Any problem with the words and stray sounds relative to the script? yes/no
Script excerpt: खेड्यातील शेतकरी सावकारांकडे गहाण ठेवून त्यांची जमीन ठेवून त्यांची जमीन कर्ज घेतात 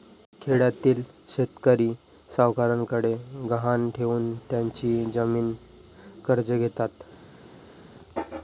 yes